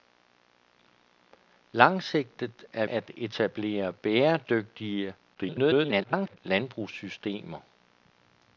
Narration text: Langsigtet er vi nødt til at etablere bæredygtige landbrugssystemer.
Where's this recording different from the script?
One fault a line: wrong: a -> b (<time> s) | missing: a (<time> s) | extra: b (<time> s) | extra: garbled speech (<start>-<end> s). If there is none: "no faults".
missing: vi nødt til (2.9 s)
extra: garbled speech (5.3-6.4 s)